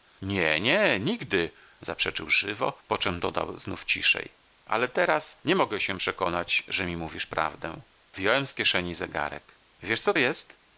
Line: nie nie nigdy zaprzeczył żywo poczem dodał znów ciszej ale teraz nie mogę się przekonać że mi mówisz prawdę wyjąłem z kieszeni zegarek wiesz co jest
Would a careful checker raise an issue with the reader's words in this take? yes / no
no